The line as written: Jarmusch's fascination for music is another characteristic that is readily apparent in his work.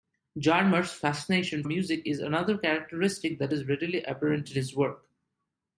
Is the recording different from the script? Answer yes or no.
yes